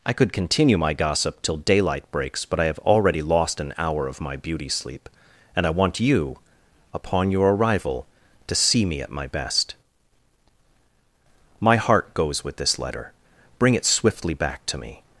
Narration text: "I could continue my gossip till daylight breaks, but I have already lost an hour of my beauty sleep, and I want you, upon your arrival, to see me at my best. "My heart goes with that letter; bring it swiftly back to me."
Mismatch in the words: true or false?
true